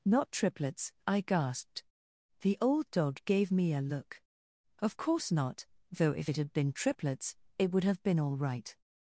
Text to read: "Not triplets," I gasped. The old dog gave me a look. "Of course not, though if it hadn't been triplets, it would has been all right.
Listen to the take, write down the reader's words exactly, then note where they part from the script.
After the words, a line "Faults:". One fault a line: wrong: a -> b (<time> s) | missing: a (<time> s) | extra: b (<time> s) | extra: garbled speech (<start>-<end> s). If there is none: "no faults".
"Not triplets," I gasped. The old dog gave me a look. "Of course not, though if it had been triplets, it would have been all right.
Faults:
wrong: hadn't -> had (6.4 s)
wrong: has -> have (7.8 s)